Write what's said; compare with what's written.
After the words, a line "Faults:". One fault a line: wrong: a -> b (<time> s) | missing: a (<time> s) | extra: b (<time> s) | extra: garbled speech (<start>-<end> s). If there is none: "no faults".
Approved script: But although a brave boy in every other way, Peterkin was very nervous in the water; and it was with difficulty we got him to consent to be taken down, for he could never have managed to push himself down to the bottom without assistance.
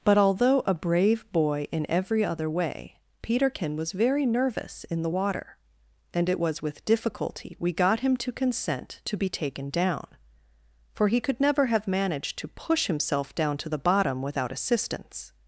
But although a brave boy in every other way, Peterkin was very nervous in the water; and it was with difficulty we got him to consent to be taken down, for he could never have managed to push himself down to the bottom without assistance.
Faults:
no faults